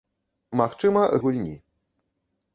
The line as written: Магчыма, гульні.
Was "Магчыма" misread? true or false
false